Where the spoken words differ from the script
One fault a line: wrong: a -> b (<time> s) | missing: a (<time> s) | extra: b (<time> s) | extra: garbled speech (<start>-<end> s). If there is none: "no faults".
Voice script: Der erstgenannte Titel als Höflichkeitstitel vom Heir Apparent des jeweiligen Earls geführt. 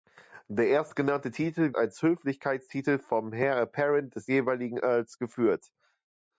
no faults